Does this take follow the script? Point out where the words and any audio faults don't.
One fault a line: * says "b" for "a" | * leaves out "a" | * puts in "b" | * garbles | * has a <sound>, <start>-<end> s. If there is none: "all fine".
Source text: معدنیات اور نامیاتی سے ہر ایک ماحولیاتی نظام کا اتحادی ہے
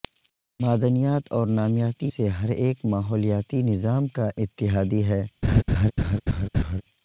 * has a laugh, 5.4-6.8 s